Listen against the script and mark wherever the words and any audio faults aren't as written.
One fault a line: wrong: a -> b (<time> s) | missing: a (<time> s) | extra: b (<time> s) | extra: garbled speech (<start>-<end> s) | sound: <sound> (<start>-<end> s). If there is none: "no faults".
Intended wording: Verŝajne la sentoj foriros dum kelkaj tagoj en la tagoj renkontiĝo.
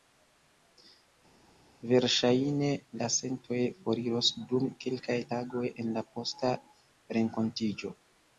wrong: tagoj -> posta (6.2 s)